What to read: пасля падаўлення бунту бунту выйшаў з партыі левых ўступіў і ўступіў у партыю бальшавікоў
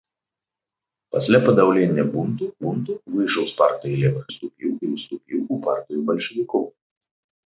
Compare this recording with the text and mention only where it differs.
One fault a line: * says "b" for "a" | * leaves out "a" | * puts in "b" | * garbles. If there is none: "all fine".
all fine